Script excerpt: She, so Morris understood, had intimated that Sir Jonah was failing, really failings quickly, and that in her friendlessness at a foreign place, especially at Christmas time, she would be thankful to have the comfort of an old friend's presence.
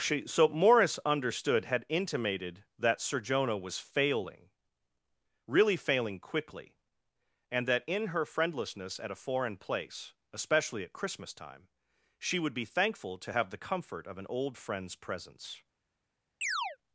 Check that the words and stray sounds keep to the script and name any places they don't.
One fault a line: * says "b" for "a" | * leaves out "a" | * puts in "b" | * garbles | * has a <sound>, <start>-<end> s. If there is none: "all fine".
* says "failing" for "failings"
* has a chirp, 16.4-16.8 s